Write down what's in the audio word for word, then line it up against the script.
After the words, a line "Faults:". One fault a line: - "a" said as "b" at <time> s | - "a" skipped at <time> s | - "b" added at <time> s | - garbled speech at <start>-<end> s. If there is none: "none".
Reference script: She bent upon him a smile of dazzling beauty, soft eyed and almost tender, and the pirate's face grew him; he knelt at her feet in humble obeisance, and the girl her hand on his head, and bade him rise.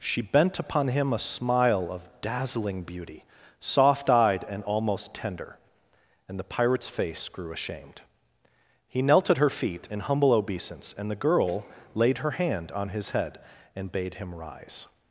She bent upon him a smile of dazzling beauty, soft eyed and almost tender, and the pirate's face grew ashamed; he knelt at her feet in humble obeisance, and the girl laid her hand on his head, and bade him rise.
Faults:
- "him" said as "ashamed" at 7.5 s
- "laid" added at 11.9 s